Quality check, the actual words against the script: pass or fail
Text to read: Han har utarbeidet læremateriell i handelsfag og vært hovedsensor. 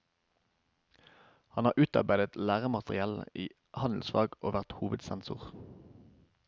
pass